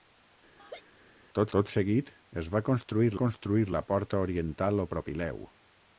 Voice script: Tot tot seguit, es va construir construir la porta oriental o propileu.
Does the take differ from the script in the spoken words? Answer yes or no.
no